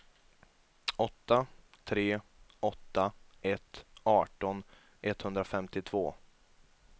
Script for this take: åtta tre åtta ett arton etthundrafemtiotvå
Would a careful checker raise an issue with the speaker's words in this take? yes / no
no